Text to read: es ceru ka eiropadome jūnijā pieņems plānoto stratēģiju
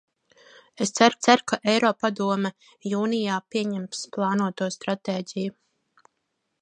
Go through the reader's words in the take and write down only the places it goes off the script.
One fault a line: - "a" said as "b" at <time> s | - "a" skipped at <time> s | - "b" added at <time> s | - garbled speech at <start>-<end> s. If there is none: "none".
- "ceru" added at 1.3 s